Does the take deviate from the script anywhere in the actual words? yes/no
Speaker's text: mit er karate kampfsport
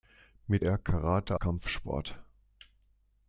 no